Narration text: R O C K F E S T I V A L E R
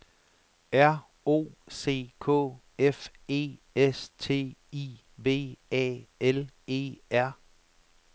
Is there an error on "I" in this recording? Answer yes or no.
no